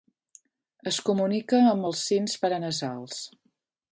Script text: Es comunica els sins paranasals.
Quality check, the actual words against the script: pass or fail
fail